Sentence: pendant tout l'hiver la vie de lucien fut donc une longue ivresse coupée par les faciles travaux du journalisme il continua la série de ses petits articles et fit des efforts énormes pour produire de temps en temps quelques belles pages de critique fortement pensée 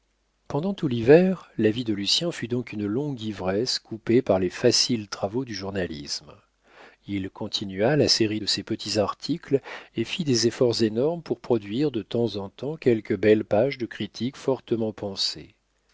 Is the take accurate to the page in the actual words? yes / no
yes